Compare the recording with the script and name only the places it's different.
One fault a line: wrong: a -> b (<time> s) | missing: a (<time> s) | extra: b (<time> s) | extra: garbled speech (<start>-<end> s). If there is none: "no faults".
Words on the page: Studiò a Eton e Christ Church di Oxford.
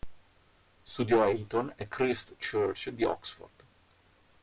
no faults